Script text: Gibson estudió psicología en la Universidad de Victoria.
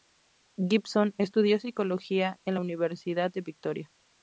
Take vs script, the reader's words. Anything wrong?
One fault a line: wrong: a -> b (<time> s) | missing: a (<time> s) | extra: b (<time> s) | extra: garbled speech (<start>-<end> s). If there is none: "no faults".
no faults